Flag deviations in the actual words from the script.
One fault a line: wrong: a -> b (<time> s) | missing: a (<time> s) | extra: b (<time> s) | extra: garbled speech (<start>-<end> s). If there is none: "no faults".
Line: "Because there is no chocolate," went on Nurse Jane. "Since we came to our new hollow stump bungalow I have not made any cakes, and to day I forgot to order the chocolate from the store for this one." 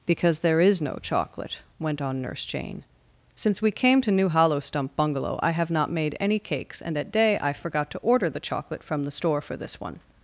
missing: our (4.1 s)
wrong: to -> at (7.0 s)